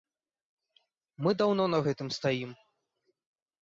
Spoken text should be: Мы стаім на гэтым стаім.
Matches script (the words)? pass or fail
fail